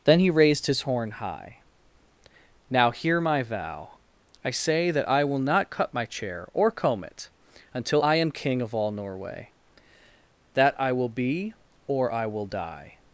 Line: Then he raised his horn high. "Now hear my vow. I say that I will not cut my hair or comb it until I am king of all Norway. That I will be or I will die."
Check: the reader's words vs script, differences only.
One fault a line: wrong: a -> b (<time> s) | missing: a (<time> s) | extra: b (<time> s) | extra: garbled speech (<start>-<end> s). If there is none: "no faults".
wrong: hair -> chair (6.0 s)